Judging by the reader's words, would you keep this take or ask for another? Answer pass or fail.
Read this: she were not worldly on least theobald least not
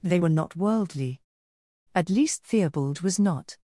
fail